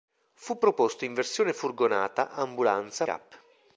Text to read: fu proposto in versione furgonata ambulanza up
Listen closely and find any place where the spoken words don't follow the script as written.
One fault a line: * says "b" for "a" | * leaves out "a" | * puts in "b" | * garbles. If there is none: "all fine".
all fine